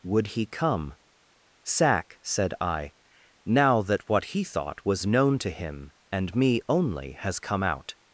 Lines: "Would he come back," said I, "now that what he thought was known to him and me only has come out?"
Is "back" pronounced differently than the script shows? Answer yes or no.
yes